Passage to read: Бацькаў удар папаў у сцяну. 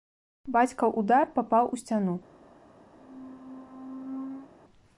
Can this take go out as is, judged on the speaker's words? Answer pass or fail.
pass